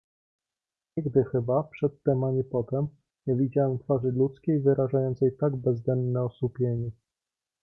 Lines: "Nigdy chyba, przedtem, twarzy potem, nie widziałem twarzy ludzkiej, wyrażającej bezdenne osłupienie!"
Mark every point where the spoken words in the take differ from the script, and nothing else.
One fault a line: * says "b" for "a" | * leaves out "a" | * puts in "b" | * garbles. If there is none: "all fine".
* says "ani" for "twarzy"
* puts in "tak"